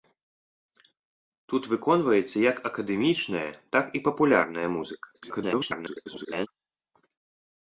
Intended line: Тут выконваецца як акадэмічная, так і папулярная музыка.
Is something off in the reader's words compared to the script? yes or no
yes